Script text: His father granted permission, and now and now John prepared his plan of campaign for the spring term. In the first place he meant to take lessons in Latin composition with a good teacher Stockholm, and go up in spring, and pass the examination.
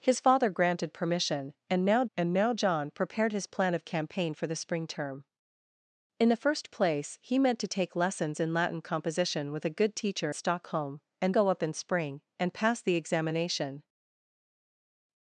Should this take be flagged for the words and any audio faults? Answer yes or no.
no